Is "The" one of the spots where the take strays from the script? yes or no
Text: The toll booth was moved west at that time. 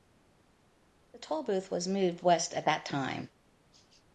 no